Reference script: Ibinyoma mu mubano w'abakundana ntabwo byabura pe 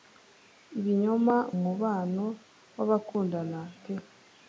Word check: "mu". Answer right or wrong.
wrong